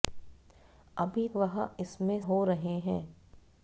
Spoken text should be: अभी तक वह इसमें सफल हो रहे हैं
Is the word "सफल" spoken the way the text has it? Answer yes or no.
no